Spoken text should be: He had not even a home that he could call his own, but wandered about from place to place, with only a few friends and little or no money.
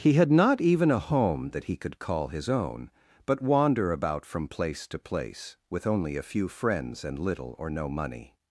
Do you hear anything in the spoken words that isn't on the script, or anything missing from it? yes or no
yes